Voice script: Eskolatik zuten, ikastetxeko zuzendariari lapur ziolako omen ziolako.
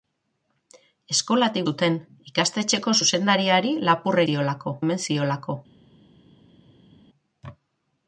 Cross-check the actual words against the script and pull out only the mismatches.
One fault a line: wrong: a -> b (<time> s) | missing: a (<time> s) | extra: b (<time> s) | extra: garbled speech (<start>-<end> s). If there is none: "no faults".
no faults